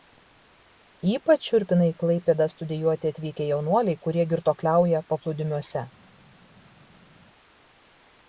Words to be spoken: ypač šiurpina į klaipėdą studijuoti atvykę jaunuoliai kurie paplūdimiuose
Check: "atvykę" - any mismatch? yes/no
no